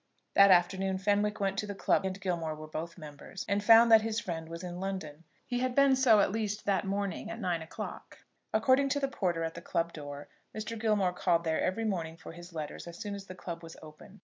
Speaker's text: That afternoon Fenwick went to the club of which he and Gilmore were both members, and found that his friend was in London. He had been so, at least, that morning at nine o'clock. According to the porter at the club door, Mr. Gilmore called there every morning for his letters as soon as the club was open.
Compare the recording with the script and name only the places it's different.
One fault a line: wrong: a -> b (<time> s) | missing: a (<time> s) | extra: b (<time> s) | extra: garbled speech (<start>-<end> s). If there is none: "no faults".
missing: of which he (2.1 s)